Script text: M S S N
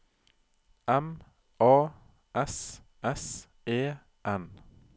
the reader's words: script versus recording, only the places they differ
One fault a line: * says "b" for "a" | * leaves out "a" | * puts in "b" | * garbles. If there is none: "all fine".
* puts in "A"
* puts in "E"